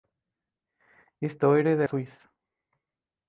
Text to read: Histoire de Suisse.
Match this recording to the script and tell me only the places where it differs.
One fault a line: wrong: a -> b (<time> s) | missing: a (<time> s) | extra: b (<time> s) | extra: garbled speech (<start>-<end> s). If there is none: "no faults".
no faults